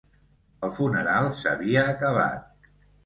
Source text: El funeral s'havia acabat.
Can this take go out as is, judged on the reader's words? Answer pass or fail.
pass